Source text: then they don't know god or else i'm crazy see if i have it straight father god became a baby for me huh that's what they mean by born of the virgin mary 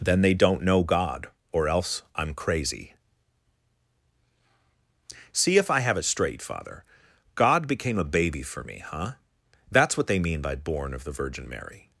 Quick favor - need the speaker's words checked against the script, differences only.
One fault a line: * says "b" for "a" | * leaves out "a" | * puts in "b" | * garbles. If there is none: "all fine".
all fine